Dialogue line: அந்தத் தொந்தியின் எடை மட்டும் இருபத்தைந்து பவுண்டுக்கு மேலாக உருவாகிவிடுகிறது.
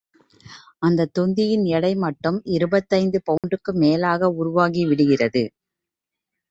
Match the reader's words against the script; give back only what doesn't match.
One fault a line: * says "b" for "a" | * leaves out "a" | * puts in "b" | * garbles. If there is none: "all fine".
all fine